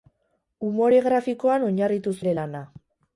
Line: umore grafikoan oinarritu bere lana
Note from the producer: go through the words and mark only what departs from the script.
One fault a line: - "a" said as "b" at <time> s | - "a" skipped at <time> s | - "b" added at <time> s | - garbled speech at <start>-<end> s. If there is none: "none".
none